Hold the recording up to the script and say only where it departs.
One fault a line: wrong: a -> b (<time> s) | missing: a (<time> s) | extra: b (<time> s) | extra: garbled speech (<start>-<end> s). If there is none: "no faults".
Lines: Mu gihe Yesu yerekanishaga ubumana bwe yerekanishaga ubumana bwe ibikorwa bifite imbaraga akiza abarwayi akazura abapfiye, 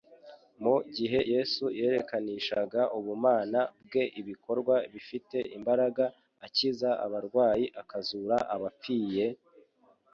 missing: yerekanishaga ubumana bwe (4.0 s)